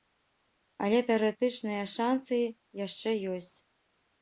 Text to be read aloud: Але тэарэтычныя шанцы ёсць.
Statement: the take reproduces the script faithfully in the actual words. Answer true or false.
false